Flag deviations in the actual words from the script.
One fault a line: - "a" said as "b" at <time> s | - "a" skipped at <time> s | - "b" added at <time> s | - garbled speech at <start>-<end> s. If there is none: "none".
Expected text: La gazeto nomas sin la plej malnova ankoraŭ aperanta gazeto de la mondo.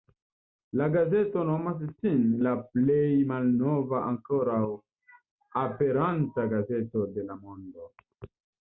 none